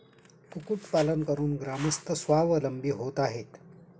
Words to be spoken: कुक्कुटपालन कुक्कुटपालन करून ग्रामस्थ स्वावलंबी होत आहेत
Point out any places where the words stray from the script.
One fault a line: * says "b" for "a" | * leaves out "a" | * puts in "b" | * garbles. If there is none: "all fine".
* leaves out "कुक्कुटपालन"